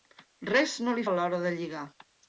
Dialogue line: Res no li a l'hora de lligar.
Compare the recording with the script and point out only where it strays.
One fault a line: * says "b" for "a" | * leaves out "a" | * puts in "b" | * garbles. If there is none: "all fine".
all fine